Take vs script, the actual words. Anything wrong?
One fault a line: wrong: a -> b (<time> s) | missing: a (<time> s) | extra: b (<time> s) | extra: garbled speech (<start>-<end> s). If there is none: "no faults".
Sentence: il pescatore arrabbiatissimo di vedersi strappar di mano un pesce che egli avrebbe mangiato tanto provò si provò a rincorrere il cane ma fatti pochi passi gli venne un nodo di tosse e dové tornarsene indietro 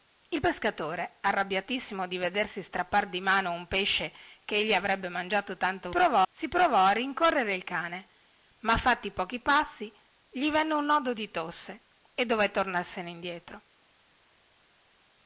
no faults